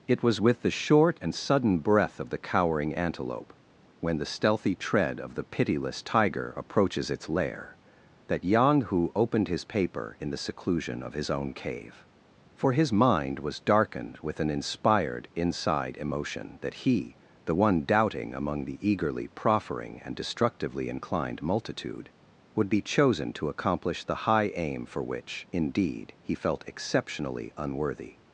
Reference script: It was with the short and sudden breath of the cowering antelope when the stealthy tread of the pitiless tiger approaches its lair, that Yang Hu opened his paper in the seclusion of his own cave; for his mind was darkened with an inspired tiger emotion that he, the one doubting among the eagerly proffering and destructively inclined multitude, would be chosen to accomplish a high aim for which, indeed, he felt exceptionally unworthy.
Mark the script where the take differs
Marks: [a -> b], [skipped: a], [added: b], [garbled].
It was with the short and sudden breath of the cowering antelope when the stealthy tread of the pitiless tiger approaches its lair, that Yang Hu opened his paper in the seclusion of his own cave; for his mind was darkened with an inspired [tiger -> inside] emotion that he, the one doubting among the eagerly proffering and destructively inclined multitude, would be chosen to accomplish [a -> the] high aim for which, indeed, he felt exceptionally unworthy.